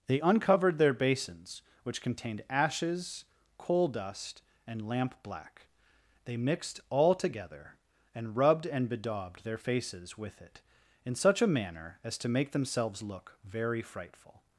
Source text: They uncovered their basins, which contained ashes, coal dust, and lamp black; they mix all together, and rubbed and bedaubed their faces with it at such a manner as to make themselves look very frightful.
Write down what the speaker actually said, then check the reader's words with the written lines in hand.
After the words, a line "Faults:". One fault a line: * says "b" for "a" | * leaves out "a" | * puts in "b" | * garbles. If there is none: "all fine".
They uncovered their basins, which contained ashes, coal dust, and lamp black; they mixed all together, and rubbed and bedaubed their faces with it in such a manner as to make themselves look very frightful.
Faults:
* says "mixed" for "mix"
* says "in" for "at"